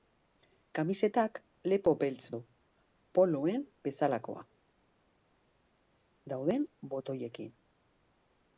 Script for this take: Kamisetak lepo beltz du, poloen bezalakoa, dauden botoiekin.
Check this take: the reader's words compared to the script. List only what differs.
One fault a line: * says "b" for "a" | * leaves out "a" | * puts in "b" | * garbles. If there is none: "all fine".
all fine